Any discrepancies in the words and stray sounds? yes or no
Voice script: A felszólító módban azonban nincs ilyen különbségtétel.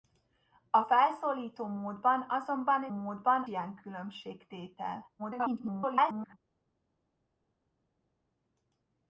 yes